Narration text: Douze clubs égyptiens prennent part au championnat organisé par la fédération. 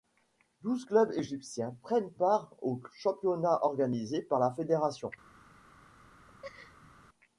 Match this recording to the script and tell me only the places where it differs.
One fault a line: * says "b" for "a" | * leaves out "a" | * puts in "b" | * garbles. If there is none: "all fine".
all fine